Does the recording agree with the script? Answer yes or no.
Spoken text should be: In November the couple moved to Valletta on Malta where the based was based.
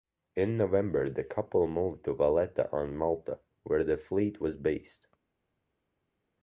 no